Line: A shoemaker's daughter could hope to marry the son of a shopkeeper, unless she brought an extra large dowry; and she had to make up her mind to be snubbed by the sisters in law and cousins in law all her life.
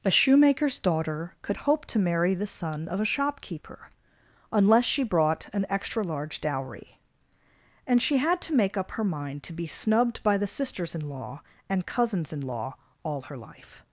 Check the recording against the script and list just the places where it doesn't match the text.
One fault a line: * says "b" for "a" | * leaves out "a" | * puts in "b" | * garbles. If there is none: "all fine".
all fine